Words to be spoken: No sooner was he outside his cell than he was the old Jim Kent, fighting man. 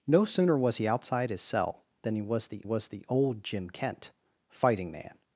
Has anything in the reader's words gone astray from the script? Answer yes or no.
yes